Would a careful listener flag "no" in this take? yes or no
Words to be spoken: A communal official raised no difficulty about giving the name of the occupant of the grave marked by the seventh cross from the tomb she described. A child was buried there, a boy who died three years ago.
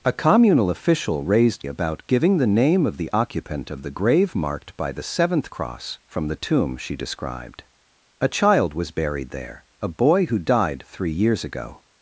yes